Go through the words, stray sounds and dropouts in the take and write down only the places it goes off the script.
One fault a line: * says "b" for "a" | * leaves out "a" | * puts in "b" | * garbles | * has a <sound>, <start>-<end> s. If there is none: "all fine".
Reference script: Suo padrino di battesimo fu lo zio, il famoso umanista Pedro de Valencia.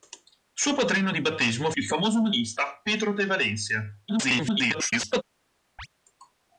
* leaves out "fu lo zio"
* garbles
* has a chirp, 5.8-5.9 s